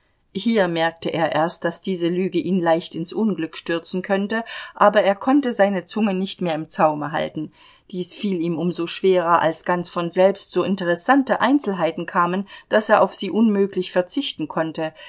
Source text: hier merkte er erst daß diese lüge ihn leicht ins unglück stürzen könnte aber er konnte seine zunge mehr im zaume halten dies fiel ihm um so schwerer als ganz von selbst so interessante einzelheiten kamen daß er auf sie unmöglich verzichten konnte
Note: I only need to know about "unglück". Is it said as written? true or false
true